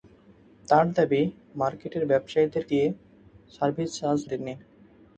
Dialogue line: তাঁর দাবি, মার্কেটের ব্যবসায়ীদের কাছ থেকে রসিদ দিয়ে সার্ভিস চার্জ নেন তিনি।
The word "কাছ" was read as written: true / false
false